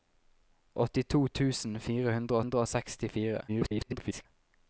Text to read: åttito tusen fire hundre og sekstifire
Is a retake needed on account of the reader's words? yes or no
yes